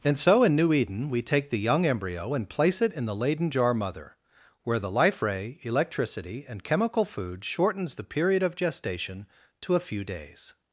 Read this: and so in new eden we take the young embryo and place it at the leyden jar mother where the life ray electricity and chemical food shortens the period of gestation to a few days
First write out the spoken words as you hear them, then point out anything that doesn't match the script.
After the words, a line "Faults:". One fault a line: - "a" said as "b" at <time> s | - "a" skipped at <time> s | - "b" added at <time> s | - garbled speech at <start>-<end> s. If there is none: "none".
and so in new eden we take the young embryo and place it in the leyden jar mother where the life ray electricity and chemical food shortens the period of gestation to a few days
Faults:
- "at" said as "in" at 2.9 s